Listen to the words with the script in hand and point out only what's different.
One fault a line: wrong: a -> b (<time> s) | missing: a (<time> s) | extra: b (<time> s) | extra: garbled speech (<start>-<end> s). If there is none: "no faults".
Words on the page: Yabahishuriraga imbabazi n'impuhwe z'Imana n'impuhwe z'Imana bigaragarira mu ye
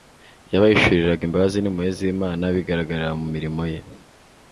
missing: n'impuhwe z'Imana (2.4 s)
extra: mirimo (3.3 s)